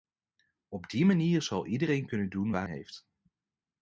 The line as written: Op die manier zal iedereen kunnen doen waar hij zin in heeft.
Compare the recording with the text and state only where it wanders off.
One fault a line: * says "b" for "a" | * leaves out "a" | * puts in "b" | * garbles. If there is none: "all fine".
* leaves out "hij zin in"